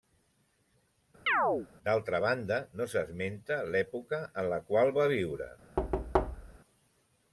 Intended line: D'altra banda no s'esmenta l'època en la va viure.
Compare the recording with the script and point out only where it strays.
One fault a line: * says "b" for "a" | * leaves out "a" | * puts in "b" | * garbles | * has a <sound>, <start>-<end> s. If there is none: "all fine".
* has a chirp, 1.3-1.7 s
* puts in "qual"
* has a thud, 5.8-6.6 s